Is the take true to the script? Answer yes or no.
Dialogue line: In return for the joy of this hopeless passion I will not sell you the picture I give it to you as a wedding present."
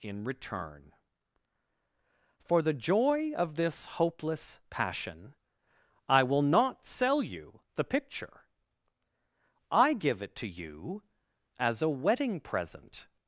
yes